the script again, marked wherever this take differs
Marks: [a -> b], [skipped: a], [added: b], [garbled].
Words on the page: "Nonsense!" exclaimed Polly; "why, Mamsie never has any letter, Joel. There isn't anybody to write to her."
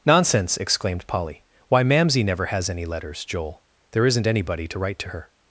"Nonsense!" exclaimed Polly; "why, Mamsie never has any [letter, -> letters] Joel. There isn't anybody to write to her."